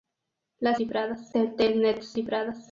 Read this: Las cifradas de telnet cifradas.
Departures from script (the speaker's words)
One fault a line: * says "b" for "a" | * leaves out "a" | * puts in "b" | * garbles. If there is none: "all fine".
all fine